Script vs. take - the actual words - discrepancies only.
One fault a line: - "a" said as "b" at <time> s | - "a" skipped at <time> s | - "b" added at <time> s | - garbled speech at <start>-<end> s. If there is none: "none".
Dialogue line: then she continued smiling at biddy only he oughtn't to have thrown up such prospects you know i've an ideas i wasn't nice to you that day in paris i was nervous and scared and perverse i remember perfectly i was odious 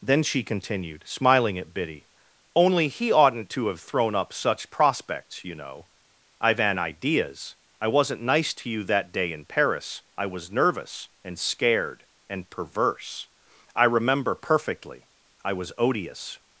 none